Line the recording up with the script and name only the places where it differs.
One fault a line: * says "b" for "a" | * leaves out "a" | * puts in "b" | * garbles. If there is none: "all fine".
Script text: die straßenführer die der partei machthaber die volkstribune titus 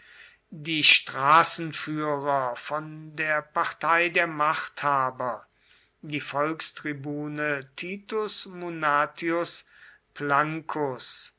* says "von" for "die"
* puts in "der"